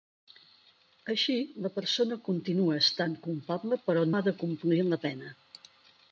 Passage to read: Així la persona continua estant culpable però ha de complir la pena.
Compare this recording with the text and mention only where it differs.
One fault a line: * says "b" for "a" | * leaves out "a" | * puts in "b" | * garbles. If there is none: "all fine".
all fine